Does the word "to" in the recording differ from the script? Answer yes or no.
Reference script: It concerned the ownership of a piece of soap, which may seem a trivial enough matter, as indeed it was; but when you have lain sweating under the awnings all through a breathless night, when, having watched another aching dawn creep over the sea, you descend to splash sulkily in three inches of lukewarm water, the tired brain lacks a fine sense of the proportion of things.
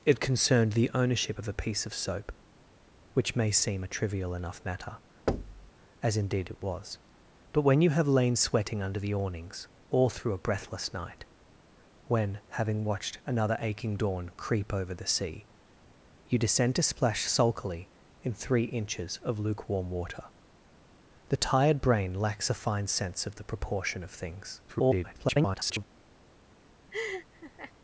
no